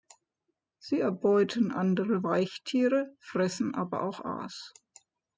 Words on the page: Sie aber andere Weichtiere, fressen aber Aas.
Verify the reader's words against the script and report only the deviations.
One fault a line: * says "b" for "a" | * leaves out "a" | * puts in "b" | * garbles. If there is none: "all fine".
* says "erbeuten" for "aber"
* puts in "auch"